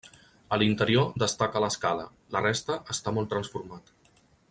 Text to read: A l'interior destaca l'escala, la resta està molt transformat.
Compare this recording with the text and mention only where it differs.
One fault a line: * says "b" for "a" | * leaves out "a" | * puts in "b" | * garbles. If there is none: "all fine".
all fine